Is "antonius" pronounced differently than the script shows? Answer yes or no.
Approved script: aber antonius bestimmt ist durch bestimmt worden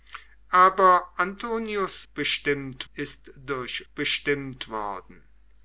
no